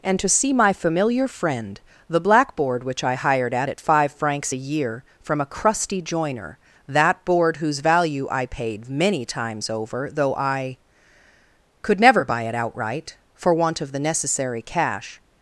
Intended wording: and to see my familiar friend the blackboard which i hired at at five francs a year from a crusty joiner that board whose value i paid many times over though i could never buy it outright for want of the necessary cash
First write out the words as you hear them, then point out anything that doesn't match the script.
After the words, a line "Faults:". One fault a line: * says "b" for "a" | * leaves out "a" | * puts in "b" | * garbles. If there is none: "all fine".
and to see my familiar friend the blackboard which i hired at at five francs a year from a crusty joiner that board whose value i paid many times over though i could never buy it outright for want of the necessary cash
Faults:
all fine